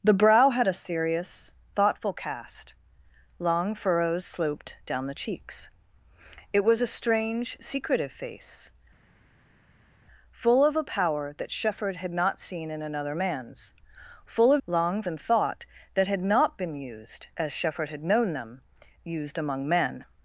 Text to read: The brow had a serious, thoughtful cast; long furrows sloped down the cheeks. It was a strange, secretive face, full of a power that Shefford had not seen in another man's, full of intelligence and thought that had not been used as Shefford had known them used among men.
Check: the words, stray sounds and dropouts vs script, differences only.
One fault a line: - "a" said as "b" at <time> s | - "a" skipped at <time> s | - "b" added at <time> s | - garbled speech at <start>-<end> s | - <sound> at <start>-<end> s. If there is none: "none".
- "intelligence" said as "long" at 14.6 s